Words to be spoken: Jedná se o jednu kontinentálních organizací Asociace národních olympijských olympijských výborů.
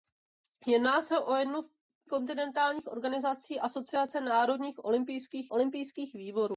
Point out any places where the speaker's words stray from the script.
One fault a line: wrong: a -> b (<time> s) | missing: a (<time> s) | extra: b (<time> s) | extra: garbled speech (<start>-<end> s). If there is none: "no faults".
no faults